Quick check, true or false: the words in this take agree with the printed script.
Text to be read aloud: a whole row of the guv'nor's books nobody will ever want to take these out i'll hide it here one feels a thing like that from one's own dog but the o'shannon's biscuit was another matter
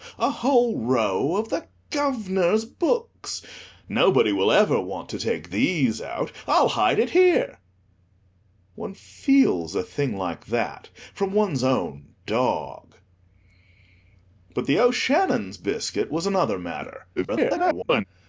false